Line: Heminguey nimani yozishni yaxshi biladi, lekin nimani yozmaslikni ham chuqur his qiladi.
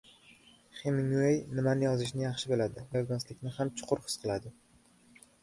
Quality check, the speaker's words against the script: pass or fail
fail